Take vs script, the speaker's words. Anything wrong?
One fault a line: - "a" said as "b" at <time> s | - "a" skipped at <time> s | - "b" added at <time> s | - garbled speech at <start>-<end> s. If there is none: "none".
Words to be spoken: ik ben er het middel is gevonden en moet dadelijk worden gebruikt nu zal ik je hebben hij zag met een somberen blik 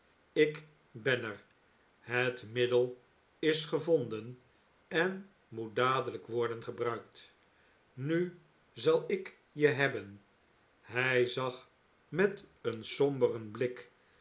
none